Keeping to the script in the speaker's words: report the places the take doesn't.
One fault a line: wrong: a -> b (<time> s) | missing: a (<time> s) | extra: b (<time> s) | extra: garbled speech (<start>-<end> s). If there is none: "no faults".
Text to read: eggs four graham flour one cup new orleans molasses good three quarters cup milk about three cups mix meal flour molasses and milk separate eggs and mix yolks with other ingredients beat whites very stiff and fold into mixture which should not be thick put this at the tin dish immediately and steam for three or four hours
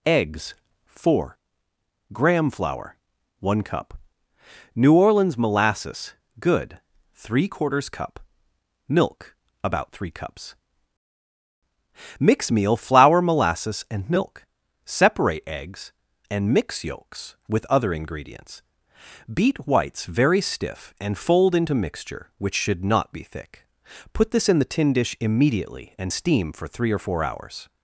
wrong: at -> in (24.5 s)